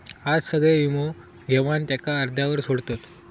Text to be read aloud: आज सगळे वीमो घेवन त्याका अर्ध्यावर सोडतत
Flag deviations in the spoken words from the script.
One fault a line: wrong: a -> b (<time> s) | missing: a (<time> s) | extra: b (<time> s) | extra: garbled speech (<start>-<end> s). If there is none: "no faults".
no faults